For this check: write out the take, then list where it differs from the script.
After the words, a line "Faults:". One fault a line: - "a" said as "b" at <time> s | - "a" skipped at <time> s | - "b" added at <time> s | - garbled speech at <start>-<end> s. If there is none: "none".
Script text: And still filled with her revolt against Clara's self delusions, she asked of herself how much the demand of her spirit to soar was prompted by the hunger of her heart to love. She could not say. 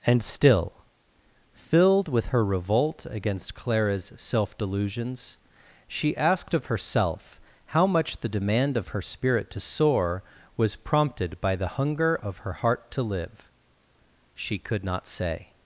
And still filled with her revolt against Clara's self delusions, she asked of herself how much the demand of her spirit to soar was prompted by the hunger of her heart to live. She could not say.
Faults:
- "love" said as "live" at 13.0 s